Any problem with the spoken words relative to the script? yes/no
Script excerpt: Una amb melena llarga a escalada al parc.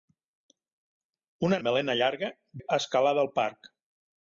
no